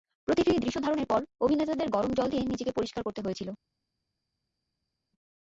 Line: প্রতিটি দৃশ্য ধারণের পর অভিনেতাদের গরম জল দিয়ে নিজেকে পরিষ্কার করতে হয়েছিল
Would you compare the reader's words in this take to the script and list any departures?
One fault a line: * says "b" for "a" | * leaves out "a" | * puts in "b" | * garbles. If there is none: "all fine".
all fine